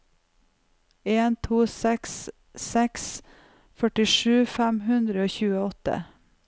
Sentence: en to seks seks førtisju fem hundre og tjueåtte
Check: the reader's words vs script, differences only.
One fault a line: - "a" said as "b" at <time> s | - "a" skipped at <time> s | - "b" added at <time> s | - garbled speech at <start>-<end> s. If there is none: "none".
none